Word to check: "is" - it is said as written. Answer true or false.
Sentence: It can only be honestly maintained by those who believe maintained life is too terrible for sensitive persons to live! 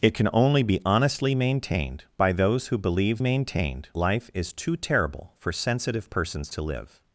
true